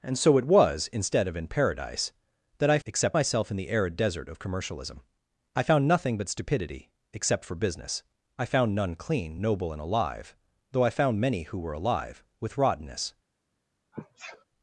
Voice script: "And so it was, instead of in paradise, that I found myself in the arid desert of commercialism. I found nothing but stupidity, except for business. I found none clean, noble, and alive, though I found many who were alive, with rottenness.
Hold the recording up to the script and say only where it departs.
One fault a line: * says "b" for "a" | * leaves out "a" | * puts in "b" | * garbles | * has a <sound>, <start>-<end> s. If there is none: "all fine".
* says "except" for "found"
* has a sneeze, 13.9-14.4 s